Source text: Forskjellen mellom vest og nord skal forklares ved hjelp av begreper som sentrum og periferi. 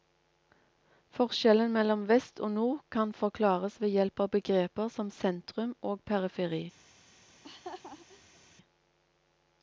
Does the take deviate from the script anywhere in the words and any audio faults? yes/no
yes